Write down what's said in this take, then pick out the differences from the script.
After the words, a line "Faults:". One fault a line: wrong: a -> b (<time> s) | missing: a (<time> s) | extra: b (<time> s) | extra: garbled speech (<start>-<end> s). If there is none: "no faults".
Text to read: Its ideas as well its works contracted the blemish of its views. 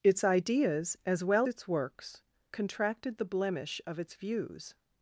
Its ideas as well its works contracted the blemish of its views.
Faults:
no faults